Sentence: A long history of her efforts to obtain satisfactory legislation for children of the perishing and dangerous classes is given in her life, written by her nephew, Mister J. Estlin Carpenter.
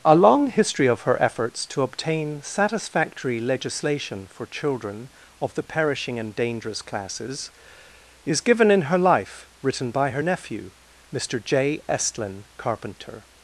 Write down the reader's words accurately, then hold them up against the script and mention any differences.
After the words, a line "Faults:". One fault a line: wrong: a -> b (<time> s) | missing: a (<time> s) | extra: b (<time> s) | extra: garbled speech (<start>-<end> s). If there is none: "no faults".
A long history of her efforts to obtain satisfactory legislation for children of the perishing and dangerous classes is given in her life, written by her nephew, Mister J. Estlin Carpenter.
Faults:
no faults